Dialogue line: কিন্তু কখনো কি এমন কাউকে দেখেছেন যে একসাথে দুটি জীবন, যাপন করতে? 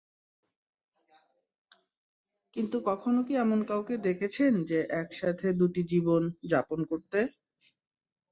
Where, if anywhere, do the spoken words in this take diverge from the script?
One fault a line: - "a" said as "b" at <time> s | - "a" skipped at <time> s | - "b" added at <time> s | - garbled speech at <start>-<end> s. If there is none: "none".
none